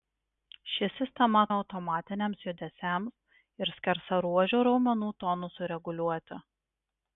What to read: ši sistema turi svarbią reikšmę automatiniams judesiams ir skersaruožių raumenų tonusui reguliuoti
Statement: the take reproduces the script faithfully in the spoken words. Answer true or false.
false